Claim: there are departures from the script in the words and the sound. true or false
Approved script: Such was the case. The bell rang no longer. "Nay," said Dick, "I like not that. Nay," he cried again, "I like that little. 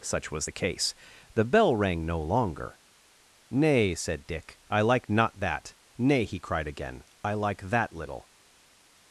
false